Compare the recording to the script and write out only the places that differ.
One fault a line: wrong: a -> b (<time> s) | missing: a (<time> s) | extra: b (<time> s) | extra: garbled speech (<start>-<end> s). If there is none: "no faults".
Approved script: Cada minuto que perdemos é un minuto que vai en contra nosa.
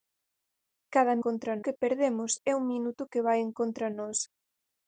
wrong: minuto -> contra (1.3 s)